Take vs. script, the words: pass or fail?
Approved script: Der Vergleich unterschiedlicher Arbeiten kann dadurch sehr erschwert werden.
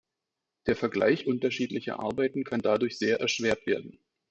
pass